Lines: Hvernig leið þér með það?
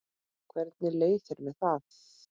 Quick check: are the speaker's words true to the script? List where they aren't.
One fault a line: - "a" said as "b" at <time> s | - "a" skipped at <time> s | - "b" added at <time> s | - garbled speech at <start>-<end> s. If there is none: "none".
none